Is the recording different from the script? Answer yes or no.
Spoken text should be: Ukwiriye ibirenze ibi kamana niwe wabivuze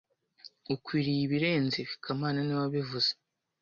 no